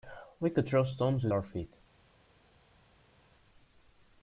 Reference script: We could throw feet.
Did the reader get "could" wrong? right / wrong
right